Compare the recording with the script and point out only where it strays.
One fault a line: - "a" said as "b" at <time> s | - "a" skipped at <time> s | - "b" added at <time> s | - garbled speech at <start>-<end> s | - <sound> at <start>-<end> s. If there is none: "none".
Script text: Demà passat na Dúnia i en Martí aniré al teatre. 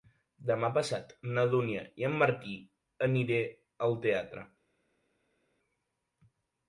none